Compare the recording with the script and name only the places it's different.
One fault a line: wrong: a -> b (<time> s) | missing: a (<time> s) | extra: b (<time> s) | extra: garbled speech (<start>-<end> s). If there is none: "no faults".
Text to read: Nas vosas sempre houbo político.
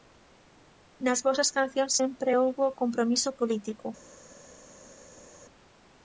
extra: cancións (1.6 s)
extra: compromiso (2.8 s)